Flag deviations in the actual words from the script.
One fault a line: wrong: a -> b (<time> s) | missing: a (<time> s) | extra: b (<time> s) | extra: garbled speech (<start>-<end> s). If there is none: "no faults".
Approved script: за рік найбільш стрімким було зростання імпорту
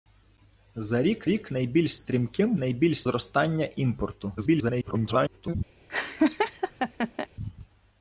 extra: рік (1.3 s)
wrong: було -> найбільш (2.6 s)
extra: garbled speech (4.4-5.5 s)